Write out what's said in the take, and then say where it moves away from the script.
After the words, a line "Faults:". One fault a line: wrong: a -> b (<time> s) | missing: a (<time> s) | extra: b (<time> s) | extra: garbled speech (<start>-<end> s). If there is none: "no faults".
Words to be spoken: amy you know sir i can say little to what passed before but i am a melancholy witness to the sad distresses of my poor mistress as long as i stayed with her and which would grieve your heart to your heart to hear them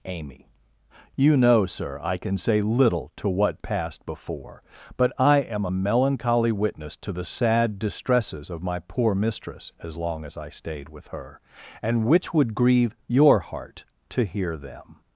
amy you know sir i can say little to what passed before but i am a melancholy witness to the sad distresses of my poor mistress as long as i stayed with her and which would grieve your heart to hear them
Faults:
missing: your heart to (14.2 s)